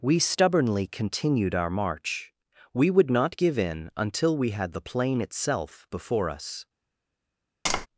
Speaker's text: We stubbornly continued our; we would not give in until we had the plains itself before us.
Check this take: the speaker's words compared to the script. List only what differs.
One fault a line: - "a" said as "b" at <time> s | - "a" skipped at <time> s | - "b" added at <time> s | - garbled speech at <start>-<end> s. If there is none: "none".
- "march" added at 1.7 s
- "plains" said as "plain" at 4.8 s